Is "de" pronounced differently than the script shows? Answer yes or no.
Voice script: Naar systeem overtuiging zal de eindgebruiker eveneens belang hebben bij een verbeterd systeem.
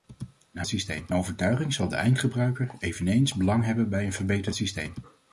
no